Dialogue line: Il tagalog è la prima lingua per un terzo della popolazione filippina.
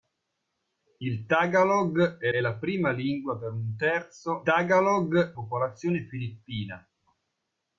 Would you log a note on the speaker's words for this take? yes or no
yes